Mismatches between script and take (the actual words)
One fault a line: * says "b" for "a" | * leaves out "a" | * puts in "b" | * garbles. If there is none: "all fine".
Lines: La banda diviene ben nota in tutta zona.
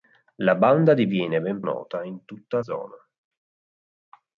all fine